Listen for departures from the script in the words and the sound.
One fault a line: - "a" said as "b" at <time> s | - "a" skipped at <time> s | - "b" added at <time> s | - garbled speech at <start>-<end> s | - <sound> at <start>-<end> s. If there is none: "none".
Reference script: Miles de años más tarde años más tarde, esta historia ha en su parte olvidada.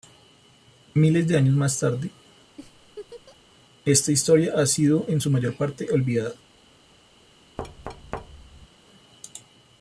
- "años más tarde" skipped at 2.1 s
- laugh at 2.6-3.4 s
- "sido" added at 4.7 s
- "mayor" added at 5.3 s
- thud at 7.6-8.7 s